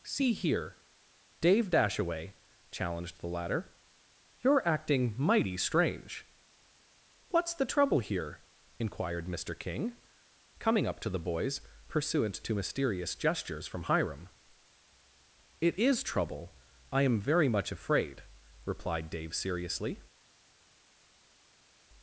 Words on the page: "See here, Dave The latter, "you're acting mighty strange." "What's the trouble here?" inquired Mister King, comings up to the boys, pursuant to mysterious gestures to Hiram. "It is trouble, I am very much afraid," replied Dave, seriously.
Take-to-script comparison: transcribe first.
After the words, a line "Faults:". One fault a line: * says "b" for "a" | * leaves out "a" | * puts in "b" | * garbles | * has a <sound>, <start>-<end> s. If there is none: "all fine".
"See here, Dave Dashaway," challenged the latter, "you're acting mighty strange." "What's the trouble here?" inquired Mister King, coming up to the boys, pursuant to mysterious gestures from Hiram. "It is trouble, I am very much afraid," replied Dave, seriously.
Faults:
* puts in "Dashaway challenged"
* says "coming" for "comings"
* says "from" for "to"